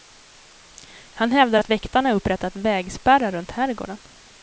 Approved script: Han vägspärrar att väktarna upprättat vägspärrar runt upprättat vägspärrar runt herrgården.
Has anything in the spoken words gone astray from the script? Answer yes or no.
yes